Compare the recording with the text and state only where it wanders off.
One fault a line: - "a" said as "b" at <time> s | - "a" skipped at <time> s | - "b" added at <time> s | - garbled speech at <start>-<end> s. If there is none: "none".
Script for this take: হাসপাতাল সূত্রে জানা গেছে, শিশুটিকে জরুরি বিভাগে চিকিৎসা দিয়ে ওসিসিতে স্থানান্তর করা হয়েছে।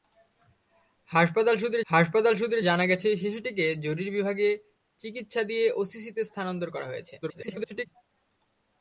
- "হাসপাতাল সূত্রে" added at 1.9 s
- garbled speech at 7.2-7.9 s